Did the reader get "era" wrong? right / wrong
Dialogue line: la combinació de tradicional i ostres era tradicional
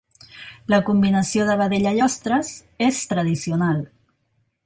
wrong